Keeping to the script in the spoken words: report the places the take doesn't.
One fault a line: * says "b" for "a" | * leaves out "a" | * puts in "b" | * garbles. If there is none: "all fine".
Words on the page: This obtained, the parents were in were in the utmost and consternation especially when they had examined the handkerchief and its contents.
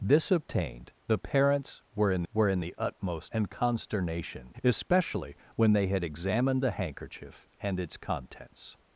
all fine